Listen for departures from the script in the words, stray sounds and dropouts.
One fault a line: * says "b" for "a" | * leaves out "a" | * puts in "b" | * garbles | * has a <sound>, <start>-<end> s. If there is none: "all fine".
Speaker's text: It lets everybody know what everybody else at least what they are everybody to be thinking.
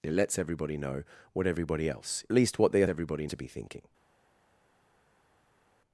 all fine